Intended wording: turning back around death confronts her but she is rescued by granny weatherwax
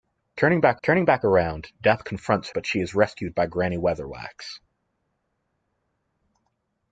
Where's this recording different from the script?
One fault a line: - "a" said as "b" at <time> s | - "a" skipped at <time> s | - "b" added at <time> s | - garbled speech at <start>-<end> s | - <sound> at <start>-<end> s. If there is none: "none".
- "turning back" added at 0.8 s
- "her" skipped at 2.5 s